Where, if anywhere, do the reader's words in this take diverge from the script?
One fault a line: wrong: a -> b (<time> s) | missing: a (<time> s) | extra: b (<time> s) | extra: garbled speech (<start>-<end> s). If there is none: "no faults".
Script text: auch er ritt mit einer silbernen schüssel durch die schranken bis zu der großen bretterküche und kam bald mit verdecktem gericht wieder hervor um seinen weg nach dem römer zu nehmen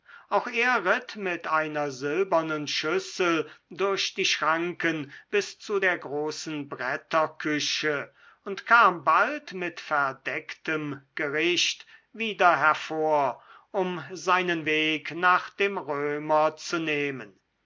no faults